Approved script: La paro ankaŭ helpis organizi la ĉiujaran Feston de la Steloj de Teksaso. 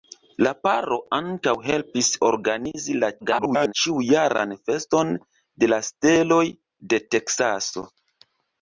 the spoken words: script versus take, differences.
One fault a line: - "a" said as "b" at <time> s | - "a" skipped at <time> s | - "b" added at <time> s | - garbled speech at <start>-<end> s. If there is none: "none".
- garbled speech at 3.2-3.7 s